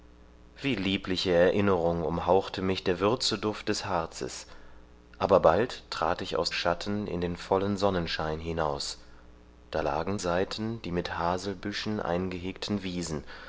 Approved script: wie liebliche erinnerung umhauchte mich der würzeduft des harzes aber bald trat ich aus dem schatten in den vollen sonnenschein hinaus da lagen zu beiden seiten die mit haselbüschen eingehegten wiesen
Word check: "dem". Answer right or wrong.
wrong